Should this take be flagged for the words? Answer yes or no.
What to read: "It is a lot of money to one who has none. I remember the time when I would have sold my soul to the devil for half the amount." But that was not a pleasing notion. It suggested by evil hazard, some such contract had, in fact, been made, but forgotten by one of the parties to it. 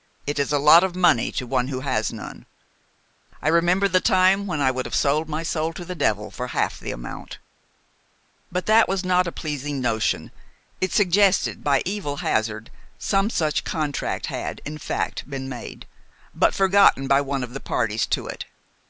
no